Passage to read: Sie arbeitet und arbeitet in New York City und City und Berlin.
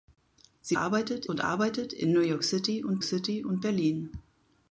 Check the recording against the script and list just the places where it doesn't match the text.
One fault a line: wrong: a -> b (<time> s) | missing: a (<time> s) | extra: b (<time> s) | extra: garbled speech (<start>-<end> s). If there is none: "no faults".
no faults